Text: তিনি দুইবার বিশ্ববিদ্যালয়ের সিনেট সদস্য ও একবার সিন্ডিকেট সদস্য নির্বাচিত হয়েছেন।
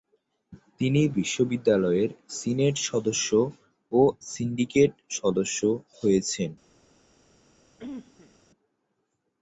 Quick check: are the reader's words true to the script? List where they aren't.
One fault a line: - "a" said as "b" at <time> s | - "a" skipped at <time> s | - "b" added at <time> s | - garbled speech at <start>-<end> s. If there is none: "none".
- "দুইবার" skipped at 1.0 s
- "একবার" skipped at 4.0 s
- "নির্বাচিত" skipped at 5.6 s